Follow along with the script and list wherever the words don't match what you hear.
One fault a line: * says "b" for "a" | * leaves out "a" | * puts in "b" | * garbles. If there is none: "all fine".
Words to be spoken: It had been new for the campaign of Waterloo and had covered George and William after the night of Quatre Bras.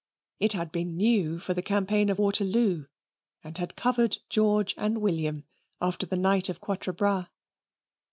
all fine